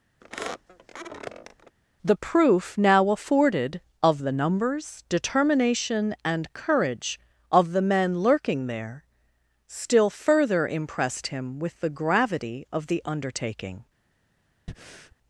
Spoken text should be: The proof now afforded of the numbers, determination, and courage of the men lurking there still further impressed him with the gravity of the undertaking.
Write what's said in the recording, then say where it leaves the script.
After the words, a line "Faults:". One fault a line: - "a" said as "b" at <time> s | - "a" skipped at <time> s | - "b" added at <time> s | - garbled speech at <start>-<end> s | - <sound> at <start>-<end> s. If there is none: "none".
The proof now afforded of the numbers, determination, and courage of the men lurking there still further impressed him with the gravity of the undertaking.
Faults:
- squeak at 0.2-1.8 s
- breath at 14.7-15.2 s